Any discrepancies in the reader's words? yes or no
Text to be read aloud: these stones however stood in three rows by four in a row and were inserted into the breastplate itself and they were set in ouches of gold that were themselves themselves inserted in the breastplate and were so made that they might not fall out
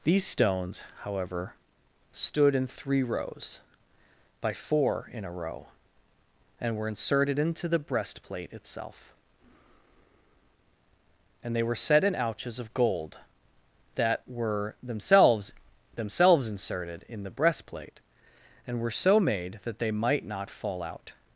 no